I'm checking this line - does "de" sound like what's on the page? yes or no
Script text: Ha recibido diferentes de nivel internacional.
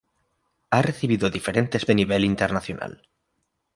yes